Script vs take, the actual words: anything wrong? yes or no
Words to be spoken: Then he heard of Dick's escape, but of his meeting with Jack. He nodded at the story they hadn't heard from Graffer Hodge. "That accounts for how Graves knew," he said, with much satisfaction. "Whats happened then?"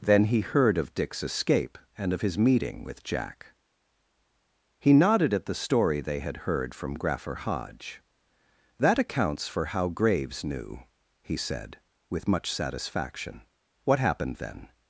yes